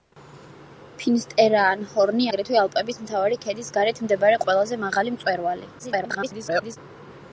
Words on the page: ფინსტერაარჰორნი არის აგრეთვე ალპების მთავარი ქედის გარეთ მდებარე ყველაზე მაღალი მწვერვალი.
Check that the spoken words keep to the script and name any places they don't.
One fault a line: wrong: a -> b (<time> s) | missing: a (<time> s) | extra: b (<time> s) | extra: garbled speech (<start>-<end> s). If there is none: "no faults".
missing: არის (2.3 s)
extra: garbled speech (5.8-6.8 s)